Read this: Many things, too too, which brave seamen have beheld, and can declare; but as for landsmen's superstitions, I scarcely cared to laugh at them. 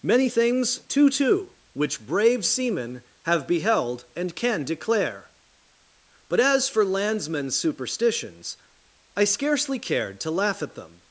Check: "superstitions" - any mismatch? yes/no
no